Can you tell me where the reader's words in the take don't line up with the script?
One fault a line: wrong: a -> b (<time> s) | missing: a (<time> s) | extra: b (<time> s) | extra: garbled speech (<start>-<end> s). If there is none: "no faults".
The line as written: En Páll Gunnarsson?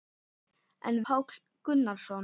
no faults